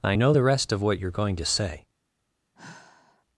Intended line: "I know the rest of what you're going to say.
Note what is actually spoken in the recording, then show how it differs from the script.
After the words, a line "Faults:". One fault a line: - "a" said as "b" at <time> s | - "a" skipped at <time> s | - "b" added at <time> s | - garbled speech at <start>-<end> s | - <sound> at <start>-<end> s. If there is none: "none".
"I know the rest of what you're going to say.
Faults:
- sigh at 2.5-3.3 s